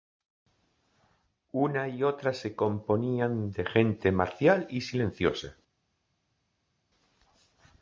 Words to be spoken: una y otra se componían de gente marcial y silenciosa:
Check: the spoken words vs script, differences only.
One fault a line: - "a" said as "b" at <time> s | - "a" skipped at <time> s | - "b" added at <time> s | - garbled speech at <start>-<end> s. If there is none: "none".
none